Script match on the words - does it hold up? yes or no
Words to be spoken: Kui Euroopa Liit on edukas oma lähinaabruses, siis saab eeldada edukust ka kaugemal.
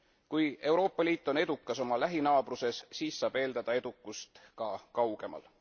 yes